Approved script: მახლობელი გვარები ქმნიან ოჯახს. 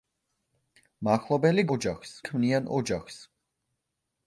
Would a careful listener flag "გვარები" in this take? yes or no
yes